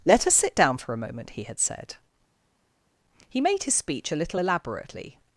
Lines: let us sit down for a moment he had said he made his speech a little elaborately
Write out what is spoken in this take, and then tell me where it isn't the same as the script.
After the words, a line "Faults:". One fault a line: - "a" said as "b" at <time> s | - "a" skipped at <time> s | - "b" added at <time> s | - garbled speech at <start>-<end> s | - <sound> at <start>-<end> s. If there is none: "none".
let us sit down for a moment he had said he made his speech a little elaborately
Faults:
none